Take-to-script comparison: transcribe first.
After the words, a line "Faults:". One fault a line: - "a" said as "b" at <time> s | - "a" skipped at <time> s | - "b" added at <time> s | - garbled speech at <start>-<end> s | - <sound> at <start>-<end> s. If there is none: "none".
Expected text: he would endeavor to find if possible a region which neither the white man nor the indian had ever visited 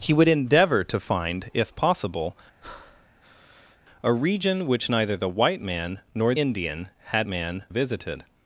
he would endeavor to find if possible a region which neither the white man nor indian had man visited
Faults:
- breath at 2.6-3.8 s
- "the" skipped at 6.3 s
- "ever" said as "man" at 7.2 s